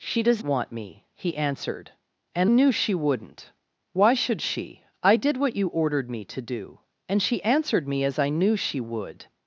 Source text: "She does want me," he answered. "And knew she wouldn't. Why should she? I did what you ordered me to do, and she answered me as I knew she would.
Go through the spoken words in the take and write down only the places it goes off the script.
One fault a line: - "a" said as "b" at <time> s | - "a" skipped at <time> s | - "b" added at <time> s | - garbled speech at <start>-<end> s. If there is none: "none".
none